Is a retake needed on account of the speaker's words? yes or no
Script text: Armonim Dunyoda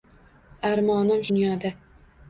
no